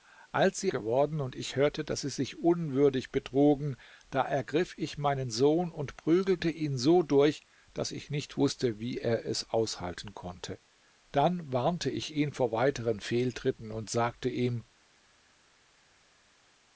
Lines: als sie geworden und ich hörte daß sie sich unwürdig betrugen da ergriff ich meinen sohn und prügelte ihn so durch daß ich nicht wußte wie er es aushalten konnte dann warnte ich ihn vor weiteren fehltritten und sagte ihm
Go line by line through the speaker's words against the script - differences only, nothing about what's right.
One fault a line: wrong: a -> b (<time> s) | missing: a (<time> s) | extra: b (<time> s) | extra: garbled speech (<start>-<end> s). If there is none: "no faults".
no faults